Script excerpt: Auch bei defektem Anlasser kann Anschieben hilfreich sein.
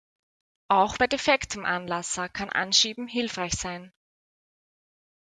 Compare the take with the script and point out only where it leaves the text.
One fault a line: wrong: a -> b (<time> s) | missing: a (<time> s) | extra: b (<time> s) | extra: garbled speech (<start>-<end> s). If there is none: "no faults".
no faults